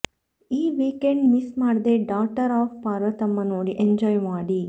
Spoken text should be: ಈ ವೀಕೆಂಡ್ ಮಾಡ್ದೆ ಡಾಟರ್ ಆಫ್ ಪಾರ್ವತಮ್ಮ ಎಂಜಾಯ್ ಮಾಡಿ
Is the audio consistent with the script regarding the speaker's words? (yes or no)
no